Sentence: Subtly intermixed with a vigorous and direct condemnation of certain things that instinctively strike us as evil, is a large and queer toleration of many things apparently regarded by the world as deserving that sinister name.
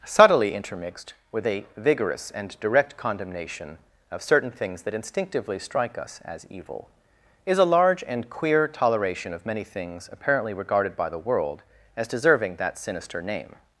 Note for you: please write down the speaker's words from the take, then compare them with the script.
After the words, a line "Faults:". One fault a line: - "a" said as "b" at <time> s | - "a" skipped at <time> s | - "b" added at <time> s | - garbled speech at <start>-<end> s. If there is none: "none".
Subtly intermixed with a vigorous and direct condemnation of certain things that instinctively strike us as evil, is a large and queer toleration of many things apparently regarded by the world as deserving that sinister name.
Faults:
none